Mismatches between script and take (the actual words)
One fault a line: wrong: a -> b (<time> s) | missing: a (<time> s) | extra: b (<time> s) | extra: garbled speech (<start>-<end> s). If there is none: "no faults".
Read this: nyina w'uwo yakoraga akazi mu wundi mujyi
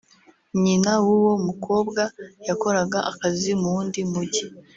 extra: mukobwa (1.5 s)